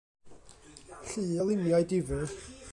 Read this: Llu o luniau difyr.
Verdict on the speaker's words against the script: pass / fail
pass